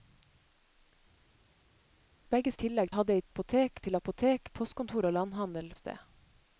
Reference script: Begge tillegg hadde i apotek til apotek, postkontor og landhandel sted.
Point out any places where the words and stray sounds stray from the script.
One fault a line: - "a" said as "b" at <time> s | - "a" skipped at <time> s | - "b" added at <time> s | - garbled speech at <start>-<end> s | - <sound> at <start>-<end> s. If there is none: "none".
none